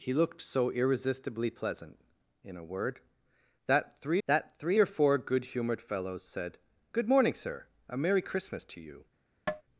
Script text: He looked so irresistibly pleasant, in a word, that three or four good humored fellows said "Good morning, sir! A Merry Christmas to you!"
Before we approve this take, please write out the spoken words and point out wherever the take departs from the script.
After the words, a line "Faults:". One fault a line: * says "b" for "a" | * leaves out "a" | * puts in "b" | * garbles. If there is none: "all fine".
He looked so irresistibly pleasant, in a word, that three that three or four good humored fellows said "Good morning, sir! A Merry Christmas to you!"
Faults:
* puts in "that three"